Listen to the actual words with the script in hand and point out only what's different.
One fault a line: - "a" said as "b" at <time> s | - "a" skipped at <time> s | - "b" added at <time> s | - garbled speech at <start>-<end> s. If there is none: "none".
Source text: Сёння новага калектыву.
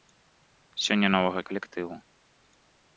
none